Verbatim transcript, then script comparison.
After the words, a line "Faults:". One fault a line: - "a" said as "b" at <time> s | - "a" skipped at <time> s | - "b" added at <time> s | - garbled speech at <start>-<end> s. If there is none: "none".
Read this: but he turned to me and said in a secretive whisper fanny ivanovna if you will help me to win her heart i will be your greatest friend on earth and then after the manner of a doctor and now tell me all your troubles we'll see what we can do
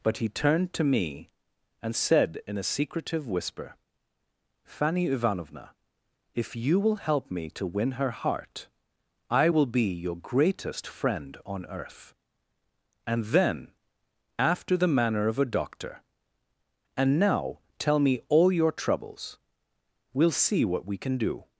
but he turned to me and said in a secretive whisper fanny ivanovna if you will help me to win her heart i will be your greatest friend on earth and then after the manner of a doctor and now tell me all your troubles we'll see what we can do
Faults:
none